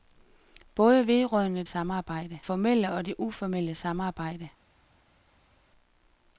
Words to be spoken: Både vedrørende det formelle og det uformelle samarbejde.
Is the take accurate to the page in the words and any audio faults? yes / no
no